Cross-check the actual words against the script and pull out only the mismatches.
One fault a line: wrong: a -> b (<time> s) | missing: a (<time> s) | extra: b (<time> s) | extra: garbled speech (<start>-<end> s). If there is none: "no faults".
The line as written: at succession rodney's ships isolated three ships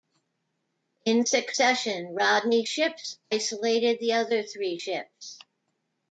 wrong: at -> in (1.1 s)
extra: the other (4.0 s)